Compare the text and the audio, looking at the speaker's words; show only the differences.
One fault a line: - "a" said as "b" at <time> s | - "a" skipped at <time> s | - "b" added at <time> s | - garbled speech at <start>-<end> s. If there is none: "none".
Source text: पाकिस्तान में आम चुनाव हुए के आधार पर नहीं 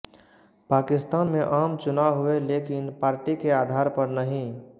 - "लेकिन पार्टी" added at 2.4 s